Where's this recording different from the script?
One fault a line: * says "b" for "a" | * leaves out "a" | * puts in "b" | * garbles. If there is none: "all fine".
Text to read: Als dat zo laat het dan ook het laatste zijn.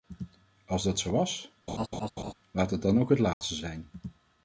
* puts in "was"